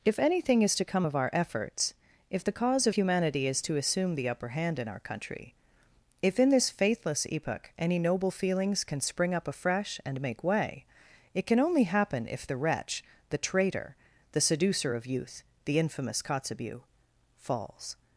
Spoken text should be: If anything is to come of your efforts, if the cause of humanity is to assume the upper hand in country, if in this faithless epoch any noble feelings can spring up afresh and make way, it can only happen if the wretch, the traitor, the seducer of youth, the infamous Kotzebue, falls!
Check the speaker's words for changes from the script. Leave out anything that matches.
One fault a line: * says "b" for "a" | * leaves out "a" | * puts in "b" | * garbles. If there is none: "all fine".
* says "our" for "your"
* puts in "our"